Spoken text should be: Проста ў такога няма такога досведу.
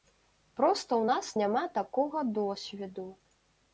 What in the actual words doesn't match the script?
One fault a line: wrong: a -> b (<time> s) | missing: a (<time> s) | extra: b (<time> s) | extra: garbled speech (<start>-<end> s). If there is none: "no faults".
wrong: такога -> нас (1.1 s)